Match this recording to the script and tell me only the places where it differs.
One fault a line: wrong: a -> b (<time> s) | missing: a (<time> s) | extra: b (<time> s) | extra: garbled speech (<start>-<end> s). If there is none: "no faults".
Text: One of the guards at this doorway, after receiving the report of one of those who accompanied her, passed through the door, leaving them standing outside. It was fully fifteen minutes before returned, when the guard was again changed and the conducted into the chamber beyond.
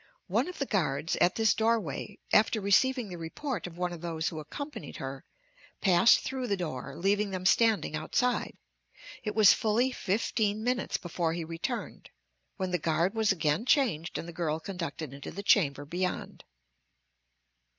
extra: he (11.3 s)
extra: girl (14.3 s)